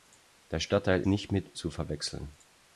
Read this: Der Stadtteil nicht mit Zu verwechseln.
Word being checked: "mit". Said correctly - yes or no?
yes